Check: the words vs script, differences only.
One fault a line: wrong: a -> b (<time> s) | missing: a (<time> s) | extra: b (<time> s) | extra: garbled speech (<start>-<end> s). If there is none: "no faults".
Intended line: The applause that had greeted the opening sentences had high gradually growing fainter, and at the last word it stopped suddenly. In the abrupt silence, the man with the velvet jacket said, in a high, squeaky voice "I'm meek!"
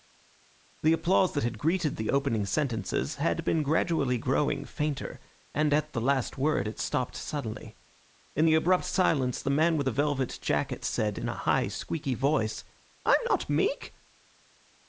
wrong: high -> been (3.4 s)
extra: not (13.3 s)